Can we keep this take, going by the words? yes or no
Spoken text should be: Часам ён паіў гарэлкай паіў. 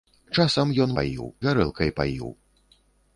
yes